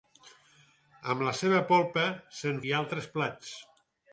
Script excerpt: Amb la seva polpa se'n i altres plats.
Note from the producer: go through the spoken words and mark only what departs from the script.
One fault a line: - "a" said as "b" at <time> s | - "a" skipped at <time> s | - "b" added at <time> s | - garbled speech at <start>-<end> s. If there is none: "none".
none